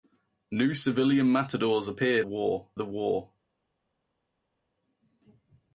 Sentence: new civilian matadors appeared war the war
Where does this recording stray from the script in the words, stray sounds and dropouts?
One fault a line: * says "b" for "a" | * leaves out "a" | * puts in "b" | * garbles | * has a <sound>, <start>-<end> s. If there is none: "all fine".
all fine